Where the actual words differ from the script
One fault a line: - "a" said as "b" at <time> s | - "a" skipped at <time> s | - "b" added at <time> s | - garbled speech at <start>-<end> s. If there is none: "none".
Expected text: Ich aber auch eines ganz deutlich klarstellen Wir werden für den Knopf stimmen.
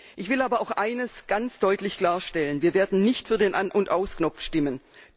- "will" added at 0.3 s
- "nicht" added at 3.0 s
- "An und Aus" added at 3.5 s